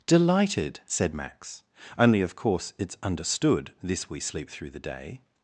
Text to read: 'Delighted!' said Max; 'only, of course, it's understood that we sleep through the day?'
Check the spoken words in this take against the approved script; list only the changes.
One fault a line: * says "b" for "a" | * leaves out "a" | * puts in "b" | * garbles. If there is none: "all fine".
* says "this" for "that"